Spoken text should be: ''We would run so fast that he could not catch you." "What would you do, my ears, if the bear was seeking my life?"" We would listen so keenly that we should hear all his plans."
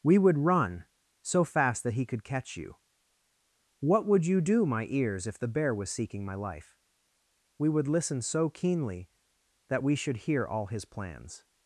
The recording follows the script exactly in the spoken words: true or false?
false